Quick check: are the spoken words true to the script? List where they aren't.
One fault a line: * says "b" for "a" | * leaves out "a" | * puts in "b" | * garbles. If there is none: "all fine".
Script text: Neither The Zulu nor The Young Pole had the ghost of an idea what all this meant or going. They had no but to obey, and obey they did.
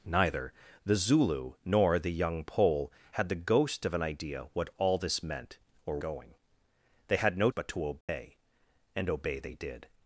all fine